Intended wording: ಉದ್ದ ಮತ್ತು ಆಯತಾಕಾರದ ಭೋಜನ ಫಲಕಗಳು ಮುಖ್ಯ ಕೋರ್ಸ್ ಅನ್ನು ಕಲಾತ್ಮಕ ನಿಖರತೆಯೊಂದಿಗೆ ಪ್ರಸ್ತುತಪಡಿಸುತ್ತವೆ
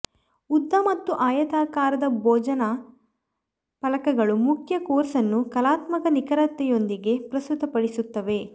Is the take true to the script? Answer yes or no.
yes